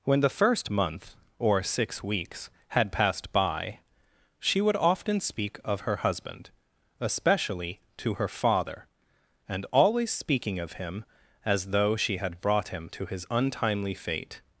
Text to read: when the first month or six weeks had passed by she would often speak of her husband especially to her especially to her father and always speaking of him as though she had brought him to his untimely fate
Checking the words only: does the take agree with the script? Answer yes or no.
no